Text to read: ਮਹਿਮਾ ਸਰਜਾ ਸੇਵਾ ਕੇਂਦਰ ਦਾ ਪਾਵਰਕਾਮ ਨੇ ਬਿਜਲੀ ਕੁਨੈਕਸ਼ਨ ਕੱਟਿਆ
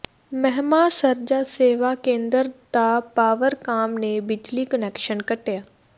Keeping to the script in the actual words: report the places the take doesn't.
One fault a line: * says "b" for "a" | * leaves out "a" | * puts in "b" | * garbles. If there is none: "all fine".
all fine